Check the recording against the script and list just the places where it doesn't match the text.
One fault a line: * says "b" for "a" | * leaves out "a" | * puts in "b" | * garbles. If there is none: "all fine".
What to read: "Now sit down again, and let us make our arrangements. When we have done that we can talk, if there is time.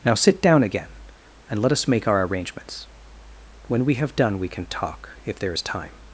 * leaves out "that"